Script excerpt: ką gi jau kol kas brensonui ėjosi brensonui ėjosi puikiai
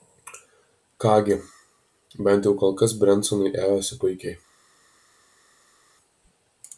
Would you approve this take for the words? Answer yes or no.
no